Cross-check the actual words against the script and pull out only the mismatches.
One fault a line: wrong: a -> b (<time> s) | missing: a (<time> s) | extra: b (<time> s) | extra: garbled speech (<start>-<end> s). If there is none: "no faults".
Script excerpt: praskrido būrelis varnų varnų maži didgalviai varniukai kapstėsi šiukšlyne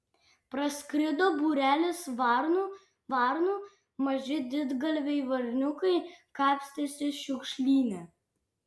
no faults